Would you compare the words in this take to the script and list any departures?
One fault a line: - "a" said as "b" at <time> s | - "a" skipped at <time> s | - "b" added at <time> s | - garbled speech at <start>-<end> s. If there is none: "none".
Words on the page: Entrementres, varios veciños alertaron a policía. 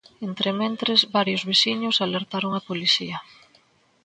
none